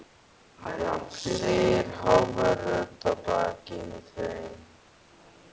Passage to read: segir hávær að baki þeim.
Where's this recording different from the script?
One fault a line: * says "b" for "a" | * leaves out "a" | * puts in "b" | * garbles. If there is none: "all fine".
* puts in "rödd"